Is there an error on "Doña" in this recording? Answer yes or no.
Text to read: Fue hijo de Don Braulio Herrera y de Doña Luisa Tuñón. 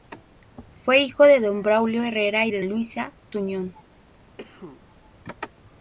yes